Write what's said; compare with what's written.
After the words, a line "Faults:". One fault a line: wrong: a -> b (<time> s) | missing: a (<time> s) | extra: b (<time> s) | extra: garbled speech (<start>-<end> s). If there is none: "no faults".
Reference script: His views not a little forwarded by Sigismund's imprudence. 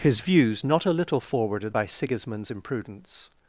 His views not a little forwarded by Sigismund's imprudence.
Faults:
no faults